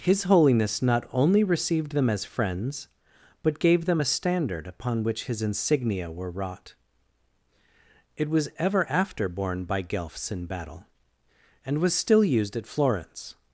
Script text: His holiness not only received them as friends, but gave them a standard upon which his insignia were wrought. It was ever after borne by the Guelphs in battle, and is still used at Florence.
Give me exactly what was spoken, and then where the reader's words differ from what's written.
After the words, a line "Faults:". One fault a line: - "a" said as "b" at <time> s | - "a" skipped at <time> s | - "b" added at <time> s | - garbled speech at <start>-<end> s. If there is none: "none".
His holiness not only received them as friends, but gave them a standard upon which his insignia were wrought. It was ever after borne by Guelphs in battle, and was still used at Florence.
Faults:
- "the" skipped at 9.8 s
- "is" said as "was" at 11.8 s